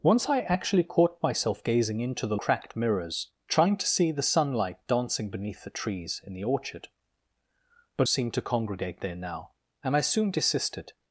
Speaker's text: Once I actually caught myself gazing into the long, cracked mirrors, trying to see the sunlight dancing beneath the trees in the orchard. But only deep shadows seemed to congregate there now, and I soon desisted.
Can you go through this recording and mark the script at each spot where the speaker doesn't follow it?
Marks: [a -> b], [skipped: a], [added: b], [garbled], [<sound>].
Once I actually caught myself gazing into the [skipped: long,] cracked mirrors, trying to see the sunlight dancing beneath the trees in the orchard. But [skipped: only deep shadows] seemed to congregate there now, and I soon desisted.